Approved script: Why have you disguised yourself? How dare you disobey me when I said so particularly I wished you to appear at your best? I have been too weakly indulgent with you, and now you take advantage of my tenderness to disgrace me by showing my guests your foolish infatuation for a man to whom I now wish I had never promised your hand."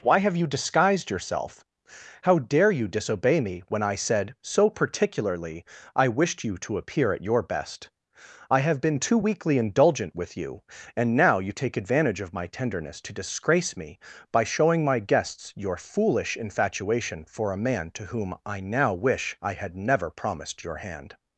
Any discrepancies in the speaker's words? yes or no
no